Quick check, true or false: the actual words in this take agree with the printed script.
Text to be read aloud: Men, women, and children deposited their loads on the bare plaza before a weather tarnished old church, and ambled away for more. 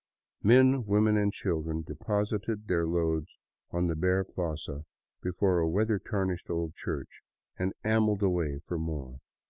true